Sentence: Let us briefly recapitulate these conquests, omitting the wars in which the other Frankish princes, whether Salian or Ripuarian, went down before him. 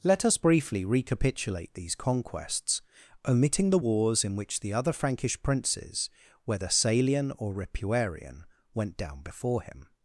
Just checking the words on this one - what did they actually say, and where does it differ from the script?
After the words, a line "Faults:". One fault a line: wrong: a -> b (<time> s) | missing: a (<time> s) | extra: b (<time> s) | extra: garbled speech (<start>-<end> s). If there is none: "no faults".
Let us briefly recapitulate these conquests, omitting the wars in which the other Frankish princes, whether Salian or Ripuarian, went down before him.
Faults:
no faults